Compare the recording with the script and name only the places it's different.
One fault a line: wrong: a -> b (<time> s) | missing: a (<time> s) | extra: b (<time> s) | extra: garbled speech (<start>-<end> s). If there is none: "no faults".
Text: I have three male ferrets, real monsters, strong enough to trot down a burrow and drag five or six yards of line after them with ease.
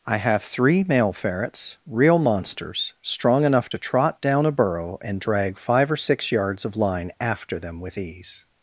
no faults